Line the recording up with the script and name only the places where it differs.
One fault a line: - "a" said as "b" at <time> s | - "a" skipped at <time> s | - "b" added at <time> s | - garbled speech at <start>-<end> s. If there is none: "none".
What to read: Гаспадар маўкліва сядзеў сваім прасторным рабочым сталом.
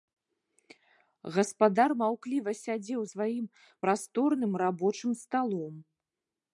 none